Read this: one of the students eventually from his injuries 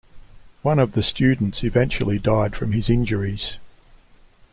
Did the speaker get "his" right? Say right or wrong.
right